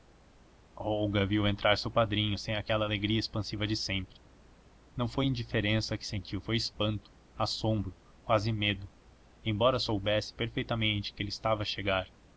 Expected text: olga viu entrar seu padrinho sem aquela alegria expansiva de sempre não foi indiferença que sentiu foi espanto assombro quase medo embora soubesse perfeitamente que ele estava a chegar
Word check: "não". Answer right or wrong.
right